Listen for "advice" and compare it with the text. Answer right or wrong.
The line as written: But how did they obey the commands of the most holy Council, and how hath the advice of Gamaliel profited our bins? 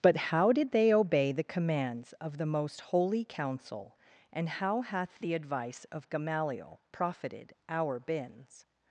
right